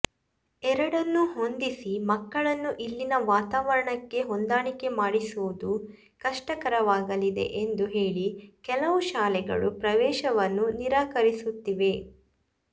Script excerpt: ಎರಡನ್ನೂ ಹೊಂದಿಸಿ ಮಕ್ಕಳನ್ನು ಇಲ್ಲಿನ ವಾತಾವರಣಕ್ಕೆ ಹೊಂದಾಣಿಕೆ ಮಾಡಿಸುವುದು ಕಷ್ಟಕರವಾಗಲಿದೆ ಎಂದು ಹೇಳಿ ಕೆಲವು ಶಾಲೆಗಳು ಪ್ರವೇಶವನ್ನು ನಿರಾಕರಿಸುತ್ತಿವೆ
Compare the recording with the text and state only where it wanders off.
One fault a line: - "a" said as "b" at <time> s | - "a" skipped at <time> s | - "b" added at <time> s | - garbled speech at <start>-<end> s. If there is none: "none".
none